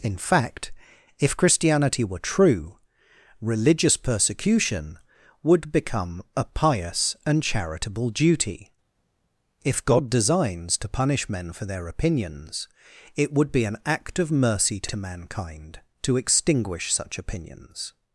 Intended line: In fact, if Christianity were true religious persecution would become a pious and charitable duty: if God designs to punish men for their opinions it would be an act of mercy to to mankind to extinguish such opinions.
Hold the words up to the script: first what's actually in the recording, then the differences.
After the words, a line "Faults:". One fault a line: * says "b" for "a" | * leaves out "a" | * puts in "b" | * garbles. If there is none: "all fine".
In fact, if Christianity were true religious persecution would become a pious and charitable duty: if God designs to punish men for their opinions it would be an act of mercy to to mankind to extinguish such opinions.
Faults:
all fine